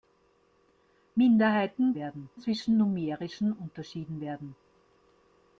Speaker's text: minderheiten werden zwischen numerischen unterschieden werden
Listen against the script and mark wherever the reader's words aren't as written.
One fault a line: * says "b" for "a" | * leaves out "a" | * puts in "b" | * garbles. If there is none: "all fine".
all fine